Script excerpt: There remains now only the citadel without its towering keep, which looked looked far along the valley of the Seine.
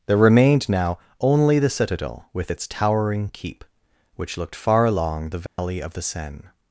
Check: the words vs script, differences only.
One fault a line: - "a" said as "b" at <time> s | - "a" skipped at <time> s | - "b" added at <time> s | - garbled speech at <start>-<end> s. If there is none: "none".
- "remains" said as "remained" at 0.2 s
- "without" said as "with" at 2.3 s
- "looked" skipped at 4.5 s